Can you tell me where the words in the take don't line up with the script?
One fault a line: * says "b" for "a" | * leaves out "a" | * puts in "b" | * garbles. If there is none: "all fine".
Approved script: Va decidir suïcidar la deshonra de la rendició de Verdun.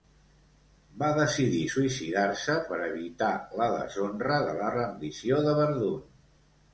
* puts in "se per evitar"